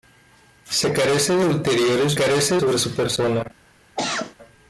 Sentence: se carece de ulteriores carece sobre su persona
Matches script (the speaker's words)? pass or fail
pass